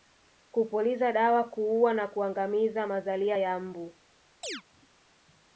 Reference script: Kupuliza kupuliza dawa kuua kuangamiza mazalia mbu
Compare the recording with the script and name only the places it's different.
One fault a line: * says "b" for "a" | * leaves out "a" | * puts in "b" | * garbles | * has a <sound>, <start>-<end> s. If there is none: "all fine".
* leaves out "kupuliza"
* puts in "na"
* puts in "ya"
* has a chirp, 4.4-4.6 s